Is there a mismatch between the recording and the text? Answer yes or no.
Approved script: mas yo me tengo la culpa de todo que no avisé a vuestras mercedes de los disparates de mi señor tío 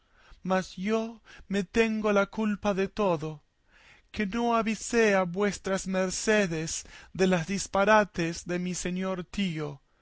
no